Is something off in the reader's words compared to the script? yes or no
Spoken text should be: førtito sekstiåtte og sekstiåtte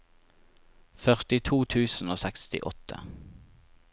yes